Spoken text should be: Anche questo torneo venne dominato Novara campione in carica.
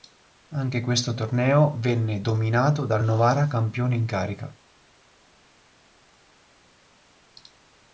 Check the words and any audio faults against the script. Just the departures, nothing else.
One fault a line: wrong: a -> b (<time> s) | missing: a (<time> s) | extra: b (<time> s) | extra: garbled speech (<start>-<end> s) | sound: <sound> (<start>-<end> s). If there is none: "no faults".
extra: dal (2.9 s)